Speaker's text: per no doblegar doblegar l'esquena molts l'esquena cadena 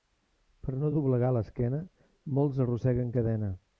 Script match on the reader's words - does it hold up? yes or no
no